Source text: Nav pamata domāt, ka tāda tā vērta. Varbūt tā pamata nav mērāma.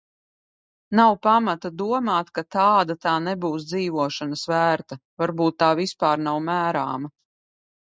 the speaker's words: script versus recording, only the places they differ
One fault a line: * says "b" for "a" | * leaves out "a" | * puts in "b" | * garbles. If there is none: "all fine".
* puts in "nebūs dzīvošanas"
* says "vispār" for "pamata"